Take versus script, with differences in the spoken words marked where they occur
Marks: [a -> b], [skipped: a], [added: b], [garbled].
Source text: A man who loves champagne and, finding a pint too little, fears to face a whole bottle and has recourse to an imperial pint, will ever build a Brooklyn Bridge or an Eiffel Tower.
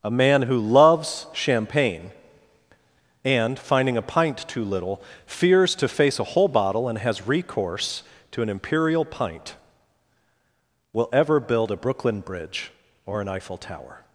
A man who loves champagne and, finding a pint too little, fears to face a whole bottle and has recourse to an imperial pint, will ever build a Brooklyn Bridge or an Eiffel Tower.